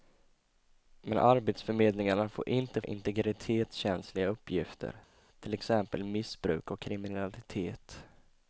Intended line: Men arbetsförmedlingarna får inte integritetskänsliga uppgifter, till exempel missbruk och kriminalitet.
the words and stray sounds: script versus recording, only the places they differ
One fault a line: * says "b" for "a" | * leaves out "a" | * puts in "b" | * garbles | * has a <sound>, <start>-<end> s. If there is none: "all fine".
all fine